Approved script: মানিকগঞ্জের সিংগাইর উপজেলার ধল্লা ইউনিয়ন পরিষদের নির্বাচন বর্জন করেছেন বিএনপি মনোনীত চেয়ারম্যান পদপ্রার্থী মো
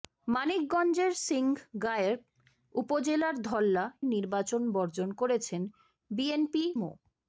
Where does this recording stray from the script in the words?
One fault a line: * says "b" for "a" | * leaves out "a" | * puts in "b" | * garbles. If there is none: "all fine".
* leaves out "ইউনিয়ন পরিষদের"
* leaves out "মনোনীত চেয়ারম্যান পদপ্রার্থী"